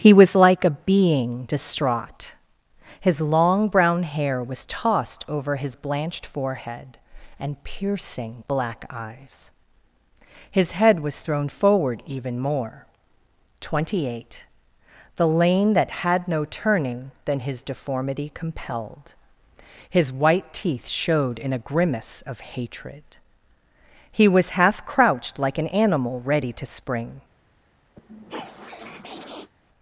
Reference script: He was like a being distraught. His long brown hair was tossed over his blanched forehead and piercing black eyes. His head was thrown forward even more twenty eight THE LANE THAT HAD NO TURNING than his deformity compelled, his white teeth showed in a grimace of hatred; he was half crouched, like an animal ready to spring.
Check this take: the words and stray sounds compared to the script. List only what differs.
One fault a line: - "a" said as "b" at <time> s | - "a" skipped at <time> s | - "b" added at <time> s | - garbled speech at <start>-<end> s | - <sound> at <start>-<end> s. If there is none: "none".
- sniff at 28.0-29.5 s